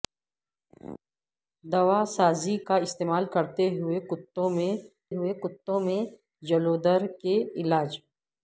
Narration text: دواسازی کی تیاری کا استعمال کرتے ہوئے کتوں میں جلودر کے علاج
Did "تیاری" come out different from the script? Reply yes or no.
yes